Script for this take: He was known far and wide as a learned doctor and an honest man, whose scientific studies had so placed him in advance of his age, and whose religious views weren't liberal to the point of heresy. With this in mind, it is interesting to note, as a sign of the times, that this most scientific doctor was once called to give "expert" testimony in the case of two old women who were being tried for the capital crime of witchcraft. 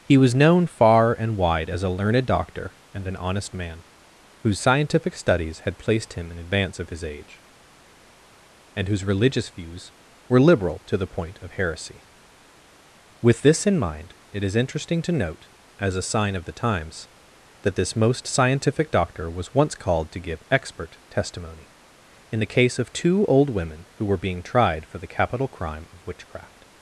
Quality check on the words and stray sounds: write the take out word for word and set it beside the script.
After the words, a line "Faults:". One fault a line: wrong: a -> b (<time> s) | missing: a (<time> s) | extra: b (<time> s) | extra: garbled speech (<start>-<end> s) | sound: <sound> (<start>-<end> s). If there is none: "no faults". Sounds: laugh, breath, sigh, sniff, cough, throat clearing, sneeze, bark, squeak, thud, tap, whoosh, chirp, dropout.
He was known far and wide as a learned doctor and an honest man, whose scientific studies had placed him in advance of his age, and whose religious views were liberal to the point of heresy. With this in mind, it is interesting to note, as a sign of the times, that this most scientific doctor was once called to give "expert" testimony in the case of two old women who were being tried for the capital crime of witchcraft.
Faults:
missing: so (5.8 s)
wrong: weren't -> were (10.3 s)